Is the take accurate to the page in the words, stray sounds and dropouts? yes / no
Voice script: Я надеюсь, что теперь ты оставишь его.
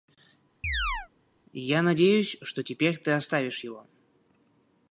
no